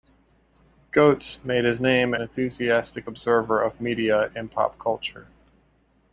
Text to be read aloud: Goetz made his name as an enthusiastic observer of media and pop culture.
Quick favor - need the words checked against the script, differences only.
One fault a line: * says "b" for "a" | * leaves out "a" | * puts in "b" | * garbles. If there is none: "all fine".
* leaves out "as an"